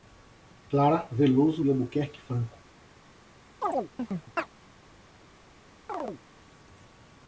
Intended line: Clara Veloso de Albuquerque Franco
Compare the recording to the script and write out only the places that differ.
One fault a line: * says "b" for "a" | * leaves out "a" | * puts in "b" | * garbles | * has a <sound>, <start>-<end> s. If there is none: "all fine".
* has a chirp, 3.6-4.5 s
* has a chirp, 5.9-6.2 s